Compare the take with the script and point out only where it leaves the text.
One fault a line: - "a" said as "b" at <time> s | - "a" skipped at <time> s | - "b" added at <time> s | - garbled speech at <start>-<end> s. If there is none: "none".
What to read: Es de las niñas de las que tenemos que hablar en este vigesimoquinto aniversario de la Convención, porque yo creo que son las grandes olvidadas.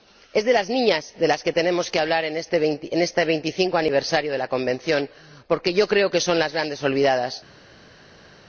none